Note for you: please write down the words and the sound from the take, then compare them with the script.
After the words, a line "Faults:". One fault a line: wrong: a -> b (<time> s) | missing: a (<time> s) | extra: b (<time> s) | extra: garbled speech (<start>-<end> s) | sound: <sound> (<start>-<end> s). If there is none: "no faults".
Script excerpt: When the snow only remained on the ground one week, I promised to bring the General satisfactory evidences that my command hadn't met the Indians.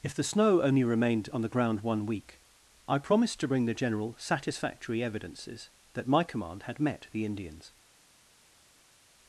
If the snow only remained on the ground one week, I promised to bring the General satisfactory evidences that my command had met the Indians.
Faults:
wrong: When -> If (0.0 s)
wrong: hadn't -> had (6.6 s)